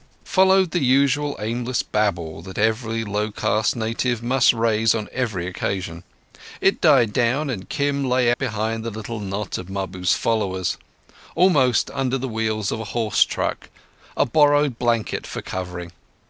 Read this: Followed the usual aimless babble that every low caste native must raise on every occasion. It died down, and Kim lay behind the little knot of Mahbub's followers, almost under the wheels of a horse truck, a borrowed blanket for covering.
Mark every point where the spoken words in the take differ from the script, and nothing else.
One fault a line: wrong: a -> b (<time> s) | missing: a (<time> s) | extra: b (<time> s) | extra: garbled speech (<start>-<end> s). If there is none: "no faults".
no faults